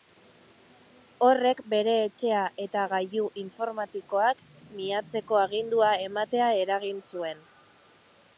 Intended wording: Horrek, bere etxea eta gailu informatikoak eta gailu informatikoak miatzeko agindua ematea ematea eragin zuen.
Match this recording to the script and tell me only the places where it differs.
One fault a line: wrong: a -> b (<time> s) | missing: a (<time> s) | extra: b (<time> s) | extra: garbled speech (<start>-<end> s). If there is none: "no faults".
missing: eta gailu informatikoak (4.4 s)
missing: ematea (6.5 s)